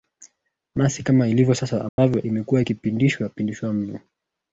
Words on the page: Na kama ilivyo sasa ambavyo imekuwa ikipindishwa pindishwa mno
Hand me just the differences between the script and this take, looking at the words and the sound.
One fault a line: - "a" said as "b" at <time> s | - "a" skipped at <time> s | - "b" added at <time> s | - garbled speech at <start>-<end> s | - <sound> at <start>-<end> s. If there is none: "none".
- "si" added at 0.9 s
- dropout at 1.9-2.0 s